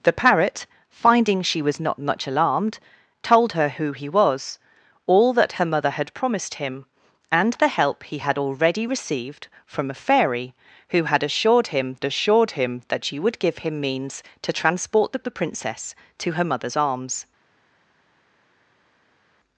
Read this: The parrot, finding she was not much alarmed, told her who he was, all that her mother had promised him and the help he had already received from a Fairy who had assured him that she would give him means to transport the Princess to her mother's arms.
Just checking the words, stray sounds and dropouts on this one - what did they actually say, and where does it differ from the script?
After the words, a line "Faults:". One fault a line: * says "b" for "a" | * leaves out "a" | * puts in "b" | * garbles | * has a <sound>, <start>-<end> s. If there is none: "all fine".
The parrot, finding she was not much alarmed, told her who he was, all that her mother had promised him and the help he had already received from a Fairy who had assured him assured him that she would give him means to transport the the Princess to her mother's arms.
Faults:
* puts in "assured him"
* puts in "the"